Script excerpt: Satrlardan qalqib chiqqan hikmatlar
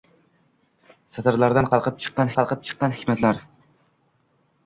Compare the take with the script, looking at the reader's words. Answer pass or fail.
fail